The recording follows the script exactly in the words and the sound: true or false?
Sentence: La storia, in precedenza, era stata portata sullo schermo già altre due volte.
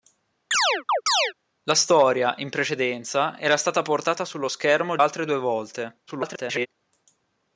false